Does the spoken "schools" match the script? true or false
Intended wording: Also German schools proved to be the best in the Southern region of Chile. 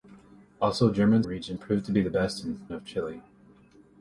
false